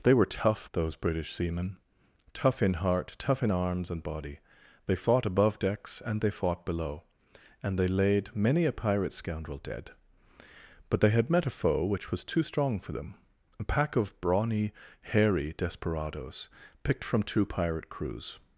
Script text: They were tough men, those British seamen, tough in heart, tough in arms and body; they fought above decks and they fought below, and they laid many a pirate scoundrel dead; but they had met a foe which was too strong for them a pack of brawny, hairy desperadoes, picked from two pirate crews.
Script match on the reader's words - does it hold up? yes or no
no